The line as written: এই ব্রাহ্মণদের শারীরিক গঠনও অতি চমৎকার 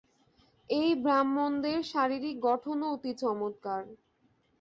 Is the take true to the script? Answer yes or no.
yes